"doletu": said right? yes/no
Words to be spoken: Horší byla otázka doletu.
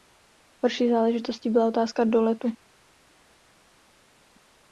yes